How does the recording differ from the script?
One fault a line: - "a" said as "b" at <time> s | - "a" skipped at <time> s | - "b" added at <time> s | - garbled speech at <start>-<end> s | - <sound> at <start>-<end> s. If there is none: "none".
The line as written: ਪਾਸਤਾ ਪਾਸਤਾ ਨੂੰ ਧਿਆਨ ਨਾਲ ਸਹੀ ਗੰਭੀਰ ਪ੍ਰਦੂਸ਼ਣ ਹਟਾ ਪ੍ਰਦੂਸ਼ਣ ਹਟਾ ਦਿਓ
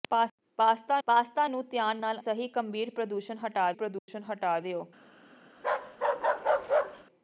- dropout at 4.0-4.1 s
- bark at 5.6-7.1 s